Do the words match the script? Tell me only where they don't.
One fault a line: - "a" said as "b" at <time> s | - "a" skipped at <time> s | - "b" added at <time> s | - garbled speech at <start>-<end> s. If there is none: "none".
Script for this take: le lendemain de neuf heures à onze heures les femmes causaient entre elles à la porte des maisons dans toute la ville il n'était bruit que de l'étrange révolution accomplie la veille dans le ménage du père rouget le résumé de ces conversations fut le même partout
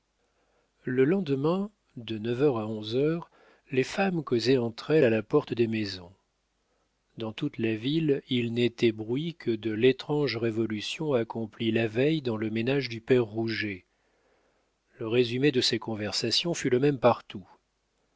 none